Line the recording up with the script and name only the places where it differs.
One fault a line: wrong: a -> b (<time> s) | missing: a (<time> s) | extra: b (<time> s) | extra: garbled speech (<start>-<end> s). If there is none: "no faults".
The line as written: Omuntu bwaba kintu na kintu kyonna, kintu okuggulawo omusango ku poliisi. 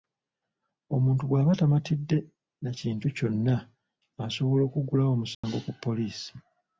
wrong: kintu -> tamatidde (1.6 s)
wrong: kintu -> asobola (4.2 s)